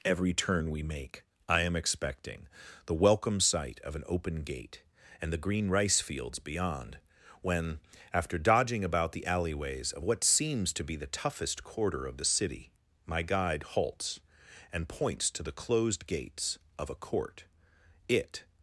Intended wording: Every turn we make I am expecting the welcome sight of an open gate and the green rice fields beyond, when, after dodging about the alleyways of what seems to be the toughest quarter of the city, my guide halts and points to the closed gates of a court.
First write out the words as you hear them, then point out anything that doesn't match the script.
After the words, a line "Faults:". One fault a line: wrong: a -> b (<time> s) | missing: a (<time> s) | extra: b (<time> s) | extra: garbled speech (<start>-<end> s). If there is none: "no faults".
Every turn we make I am expecting the welcome sight of an open gate and the green rice fields beyond, when, after dodging about the alleyways of what seems to be the toughest quarter of the city, my guide halts and points to the closed gates of a court. It
Faults:
extra: It (18.1 s)